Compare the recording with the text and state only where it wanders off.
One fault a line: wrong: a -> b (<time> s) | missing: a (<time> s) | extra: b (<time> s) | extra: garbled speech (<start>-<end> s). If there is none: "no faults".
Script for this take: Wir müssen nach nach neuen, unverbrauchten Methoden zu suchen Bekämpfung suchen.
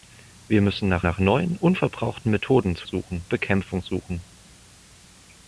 no faults